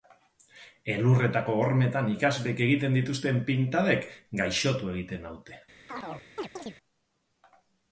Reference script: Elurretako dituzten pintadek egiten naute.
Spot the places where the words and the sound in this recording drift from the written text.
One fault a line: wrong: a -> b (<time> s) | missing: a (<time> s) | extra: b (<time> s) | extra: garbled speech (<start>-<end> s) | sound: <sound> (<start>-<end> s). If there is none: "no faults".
extra: hormetan ikasleek egiten (1.6 s)
extra: gaixotu (4.4 s)
sound: chirp (5.9-6.8 s)